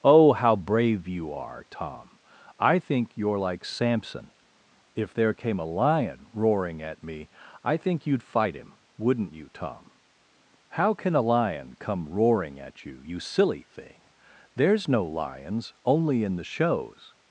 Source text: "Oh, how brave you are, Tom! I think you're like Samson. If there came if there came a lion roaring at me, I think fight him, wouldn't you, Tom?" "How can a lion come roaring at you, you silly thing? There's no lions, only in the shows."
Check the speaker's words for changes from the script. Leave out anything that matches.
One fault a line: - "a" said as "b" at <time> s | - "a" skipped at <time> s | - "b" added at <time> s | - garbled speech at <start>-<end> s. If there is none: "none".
- "if there came" skipped at 5.6 s
- "you'd" added at 8.1 s